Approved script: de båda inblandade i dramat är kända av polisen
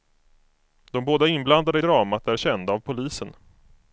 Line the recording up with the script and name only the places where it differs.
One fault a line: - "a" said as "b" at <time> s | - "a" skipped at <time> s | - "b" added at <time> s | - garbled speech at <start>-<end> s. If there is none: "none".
none